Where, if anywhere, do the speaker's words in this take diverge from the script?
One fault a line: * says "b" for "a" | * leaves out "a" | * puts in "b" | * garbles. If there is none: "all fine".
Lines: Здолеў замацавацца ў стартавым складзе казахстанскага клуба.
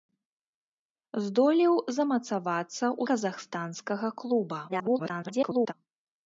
* leaves out "стартавым складзе"
* garbles